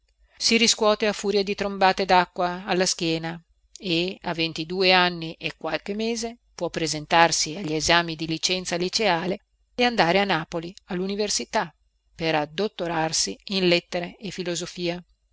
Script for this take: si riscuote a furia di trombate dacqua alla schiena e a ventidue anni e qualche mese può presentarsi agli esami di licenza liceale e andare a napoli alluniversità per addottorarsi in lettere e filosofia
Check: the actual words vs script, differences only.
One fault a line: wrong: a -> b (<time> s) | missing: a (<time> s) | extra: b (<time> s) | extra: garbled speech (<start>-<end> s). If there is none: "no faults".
no faults